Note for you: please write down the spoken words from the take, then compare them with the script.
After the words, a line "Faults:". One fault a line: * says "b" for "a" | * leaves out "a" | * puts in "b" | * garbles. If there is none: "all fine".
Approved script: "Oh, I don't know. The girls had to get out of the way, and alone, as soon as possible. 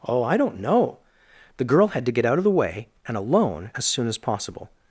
"Oh, I don't know. The girl had to get out of the way, and alone, as soon as possible.
Faults:
* says "girl" for "girls"